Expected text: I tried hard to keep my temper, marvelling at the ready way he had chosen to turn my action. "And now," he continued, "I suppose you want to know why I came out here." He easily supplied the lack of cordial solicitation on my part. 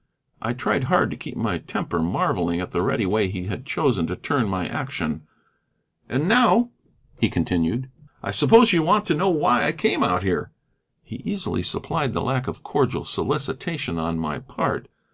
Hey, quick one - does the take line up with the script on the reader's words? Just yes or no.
yes